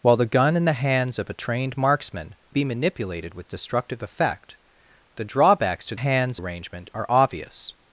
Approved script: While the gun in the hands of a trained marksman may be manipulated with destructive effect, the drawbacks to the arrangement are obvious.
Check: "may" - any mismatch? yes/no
yes